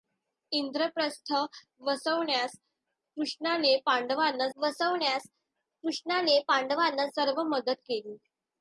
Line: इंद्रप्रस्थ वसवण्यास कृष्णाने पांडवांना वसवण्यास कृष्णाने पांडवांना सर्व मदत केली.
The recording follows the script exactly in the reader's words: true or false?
true